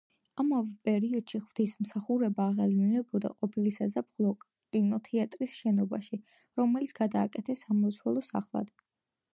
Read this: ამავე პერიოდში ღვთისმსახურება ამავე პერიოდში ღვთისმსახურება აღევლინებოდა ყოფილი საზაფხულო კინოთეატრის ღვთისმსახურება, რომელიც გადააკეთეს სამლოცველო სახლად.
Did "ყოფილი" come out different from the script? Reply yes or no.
no